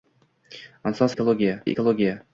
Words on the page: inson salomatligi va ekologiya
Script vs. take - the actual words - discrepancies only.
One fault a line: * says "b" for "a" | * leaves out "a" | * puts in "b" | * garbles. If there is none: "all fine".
* says "ekologiya" for "salomatligi"